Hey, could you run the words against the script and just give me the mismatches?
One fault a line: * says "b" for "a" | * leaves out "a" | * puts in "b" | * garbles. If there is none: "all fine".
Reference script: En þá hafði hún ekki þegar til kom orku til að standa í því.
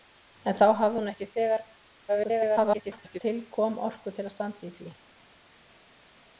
* garbles